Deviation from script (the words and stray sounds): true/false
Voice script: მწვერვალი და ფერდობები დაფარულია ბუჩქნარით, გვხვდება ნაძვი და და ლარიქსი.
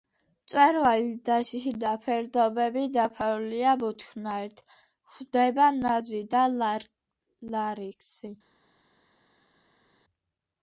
true